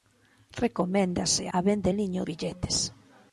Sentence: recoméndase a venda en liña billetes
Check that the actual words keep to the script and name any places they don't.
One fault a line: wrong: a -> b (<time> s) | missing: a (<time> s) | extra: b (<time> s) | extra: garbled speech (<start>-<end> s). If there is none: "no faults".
no faults